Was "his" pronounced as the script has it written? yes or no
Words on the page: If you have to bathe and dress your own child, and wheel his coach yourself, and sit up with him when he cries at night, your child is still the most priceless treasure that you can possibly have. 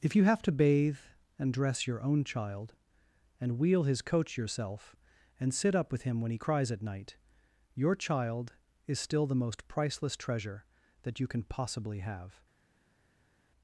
yes